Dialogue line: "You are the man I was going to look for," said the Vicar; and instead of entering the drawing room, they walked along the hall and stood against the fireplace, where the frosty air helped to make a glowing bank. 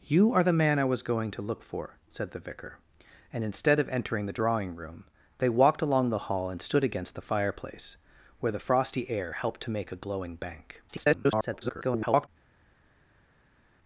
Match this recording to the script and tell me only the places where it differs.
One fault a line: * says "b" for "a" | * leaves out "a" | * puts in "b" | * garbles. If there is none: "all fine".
* garbles